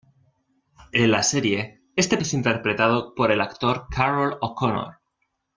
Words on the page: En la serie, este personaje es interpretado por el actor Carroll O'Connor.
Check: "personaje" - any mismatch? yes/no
yes